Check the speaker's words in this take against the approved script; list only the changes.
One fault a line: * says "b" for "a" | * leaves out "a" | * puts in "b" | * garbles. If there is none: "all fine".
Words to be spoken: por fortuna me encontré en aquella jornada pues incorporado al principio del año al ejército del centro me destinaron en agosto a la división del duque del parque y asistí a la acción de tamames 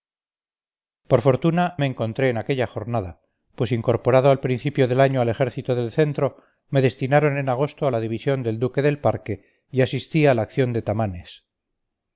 all fine